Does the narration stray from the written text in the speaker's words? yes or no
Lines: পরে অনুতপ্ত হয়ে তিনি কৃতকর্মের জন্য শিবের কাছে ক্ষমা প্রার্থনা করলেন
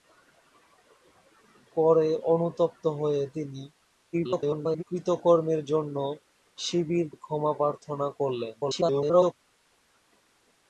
yes